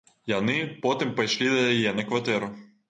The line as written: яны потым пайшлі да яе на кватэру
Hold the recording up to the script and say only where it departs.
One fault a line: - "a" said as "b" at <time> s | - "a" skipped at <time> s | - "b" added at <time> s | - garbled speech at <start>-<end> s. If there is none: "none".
none